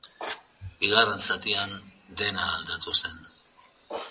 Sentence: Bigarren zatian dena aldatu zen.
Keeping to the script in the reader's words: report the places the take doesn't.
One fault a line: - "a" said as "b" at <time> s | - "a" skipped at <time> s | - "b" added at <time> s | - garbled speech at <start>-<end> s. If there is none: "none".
none